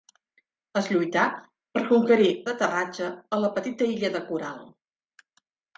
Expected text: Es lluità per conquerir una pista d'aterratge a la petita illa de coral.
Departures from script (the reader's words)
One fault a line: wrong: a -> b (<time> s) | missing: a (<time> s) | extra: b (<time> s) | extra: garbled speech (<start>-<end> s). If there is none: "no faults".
missing: una pista (2.3 s)